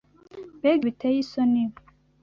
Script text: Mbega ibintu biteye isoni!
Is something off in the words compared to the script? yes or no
yes